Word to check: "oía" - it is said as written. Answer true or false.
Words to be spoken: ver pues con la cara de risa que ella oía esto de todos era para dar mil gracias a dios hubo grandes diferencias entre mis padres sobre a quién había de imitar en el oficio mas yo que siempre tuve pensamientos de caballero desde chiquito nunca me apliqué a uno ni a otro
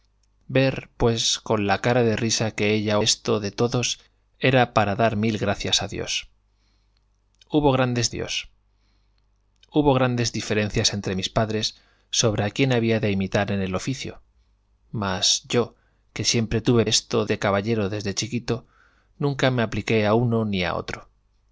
false